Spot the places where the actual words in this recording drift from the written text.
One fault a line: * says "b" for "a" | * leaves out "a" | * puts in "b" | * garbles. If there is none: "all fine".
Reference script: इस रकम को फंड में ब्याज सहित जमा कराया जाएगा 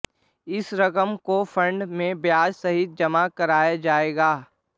all fine